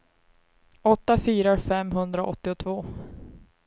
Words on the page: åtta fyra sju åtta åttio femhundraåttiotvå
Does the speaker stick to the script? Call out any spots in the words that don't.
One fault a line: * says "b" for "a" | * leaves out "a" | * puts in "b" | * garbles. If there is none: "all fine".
* leaves out "sju åtta åttio"